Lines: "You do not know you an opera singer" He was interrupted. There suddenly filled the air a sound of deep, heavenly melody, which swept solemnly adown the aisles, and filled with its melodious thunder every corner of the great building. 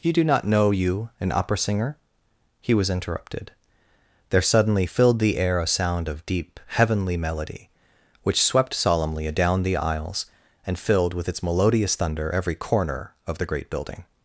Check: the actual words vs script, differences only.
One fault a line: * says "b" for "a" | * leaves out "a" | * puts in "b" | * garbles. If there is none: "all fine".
all fine